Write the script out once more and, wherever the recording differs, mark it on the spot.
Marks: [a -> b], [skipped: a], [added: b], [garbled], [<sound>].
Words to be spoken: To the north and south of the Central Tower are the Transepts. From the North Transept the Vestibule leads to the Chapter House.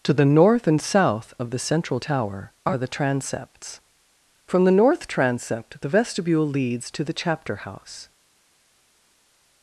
To the north and south of the Central Tower are the Transepts. From the North Transept the Vestibule leads to the Chapter House.